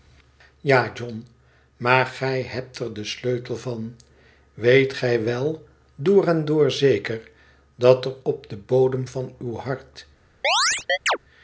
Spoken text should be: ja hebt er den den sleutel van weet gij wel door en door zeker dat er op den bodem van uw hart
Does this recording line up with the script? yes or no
no